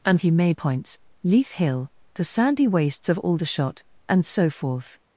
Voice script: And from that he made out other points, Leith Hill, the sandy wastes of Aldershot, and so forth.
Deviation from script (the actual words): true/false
true